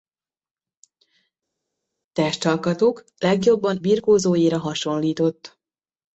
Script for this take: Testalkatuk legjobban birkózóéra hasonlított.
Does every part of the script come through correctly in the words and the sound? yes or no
yes